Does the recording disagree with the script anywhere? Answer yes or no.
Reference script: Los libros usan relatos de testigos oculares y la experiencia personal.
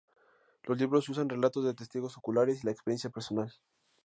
no